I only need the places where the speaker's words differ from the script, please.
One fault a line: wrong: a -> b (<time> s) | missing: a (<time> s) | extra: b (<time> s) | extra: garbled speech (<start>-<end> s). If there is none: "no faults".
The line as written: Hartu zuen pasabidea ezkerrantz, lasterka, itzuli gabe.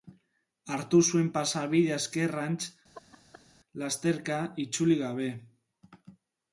no faults